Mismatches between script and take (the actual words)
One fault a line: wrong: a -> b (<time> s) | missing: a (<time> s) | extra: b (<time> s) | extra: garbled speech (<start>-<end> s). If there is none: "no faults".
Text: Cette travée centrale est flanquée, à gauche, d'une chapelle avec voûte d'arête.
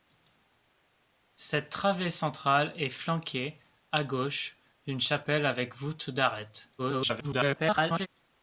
extra: garbled speech (6.8-8.1 s)